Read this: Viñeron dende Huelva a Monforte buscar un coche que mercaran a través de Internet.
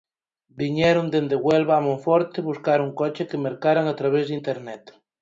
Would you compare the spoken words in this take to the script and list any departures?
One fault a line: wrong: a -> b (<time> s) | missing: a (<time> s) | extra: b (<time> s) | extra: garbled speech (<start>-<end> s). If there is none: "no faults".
no faults